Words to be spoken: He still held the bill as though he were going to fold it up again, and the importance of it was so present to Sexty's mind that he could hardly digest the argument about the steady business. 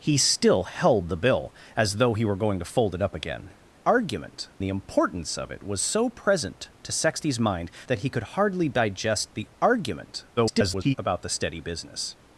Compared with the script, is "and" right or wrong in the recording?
wrong